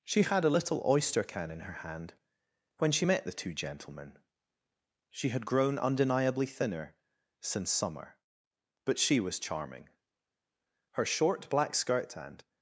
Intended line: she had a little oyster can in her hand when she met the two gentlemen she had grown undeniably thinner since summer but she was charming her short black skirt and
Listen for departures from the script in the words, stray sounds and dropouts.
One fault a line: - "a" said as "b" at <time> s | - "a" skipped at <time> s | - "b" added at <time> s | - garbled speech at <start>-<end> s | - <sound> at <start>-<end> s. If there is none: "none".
none